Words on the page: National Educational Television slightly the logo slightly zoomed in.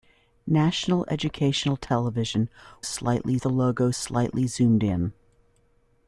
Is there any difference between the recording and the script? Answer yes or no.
no